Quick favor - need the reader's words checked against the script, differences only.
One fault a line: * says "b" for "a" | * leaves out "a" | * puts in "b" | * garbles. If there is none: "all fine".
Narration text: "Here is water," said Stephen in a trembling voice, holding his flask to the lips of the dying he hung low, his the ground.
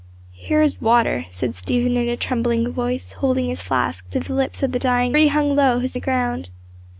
all fine